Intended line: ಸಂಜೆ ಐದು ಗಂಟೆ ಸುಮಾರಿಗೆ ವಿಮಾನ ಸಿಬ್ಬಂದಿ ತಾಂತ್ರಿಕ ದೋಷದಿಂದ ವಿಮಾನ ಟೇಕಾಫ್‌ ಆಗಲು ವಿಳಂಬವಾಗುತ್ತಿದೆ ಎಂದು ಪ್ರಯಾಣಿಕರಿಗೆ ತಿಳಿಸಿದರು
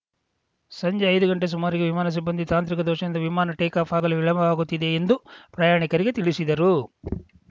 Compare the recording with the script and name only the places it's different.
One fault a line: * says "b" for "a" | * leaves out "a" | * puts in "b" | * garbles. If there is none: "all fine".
all fine